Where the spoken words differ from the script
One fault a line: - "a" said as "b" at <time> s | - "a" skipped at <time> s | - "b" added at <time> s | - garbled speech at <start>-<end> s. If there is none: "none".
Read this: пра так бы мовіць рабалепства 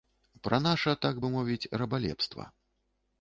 - "наша" added at 0.7 s